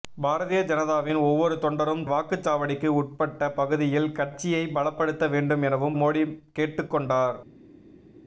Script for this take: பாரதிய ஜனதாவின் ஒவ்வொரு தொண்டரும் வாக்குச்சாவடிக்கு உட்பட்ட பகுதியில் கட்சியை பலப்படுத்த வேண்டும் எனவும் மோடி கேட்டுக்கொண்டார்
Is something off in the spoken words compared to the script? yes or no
no